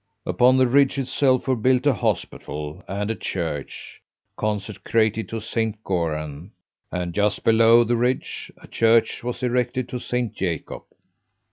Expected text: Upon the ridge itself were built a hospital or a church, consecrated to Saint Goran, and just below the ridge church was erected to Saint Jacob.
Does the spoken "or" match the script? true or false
false